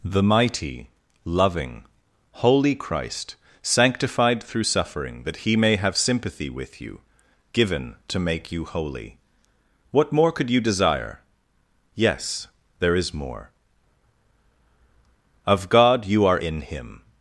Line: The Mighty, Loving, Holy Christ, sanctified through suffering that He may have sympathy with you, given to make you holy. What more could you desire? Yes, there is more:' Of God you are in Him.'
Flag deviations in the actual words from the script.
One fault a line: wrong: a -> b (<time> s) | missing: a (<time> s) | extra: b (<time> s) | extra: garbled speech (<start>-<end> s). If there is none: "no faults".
no faults